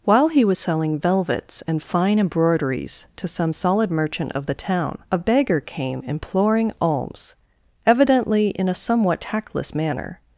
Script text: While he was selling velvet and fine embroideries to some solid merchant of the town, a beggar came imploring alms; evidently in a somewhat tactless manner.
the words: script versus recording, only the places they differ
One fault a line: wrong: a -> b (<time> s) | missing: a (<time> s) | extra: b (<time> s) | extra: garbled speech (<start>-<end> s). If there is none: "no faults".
wrong: velvet -> velvets (1.0 s)